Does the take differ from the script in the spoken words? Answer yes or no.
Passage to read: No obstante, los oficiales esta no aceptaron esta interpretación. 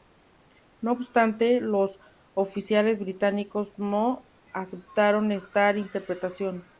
yes